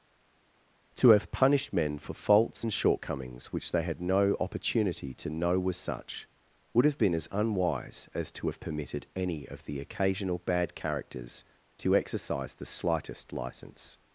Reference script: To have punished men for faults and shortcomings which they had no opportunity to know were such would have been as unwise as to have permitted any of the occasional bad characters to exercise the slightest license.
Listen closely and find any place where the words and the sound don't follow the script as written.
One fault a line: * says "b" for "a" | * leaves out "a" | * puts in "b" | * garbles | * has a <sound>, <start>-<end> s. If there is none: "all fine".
all fine